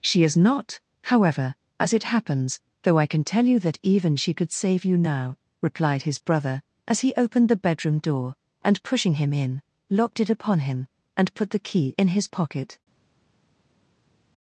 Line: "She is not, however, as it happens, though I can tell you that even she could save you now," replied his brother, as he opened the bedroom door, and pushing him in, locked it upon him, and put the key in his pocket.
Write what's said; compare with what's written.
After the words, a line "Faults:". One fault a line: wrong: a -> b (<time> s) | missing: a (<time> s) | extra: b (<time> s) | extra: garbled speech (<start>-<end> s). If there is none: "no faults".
"She is not, however, as it happens, though I can tell you that even she could save you now," replied his brother, as he opened the bedroom door, and pushing him in, locked it upon him, and put the key in his pocket.
Faults:
no faults